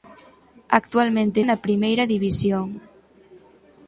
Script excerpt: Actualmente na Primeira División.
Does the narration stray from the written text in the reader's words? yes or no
no